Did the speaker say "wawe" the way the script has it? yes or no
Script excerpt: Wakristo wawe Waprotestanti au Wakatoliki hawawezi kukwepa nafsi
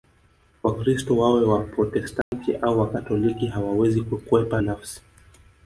yes